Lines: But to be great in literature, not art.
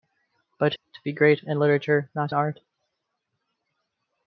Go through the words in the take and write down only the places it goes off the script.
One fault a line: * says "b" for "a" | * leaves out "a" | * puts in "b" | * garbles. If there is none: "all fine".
all fine